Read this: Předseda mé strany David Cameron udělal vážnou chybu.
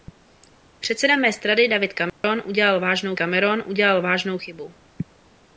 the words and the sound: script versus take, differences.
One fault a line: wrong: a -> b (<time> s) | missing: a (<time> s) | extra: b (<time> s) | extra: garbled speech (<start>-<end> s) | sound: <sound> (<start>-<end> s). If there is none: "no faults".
sound: dropout (2.1-2.2 s)
extra: Cameron udělal vážnou (3.1 s)